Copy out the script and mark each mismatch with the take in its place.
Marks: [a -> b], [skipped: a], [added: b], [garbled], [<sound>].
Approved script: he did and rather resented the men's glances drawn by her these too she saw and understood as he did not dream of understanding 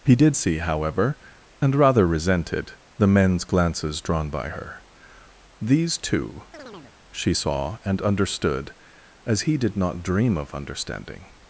he did [added: see however] and rather resented the men's glances drawn by her these too [chirp] she saw and understood as he did not dream of understanding